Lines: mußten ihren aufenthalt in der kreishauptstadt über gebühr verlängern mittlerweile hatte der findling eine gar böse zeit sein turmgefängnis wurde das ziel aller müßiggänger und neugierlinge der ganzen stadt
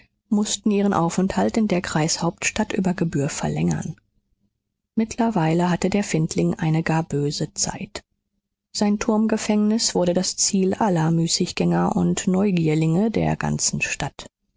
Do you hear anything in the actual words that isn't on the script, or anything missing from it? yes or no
no